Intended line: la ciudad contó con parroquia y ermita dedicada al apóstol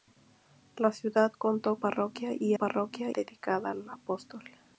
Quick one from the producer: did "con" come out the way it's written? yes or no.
no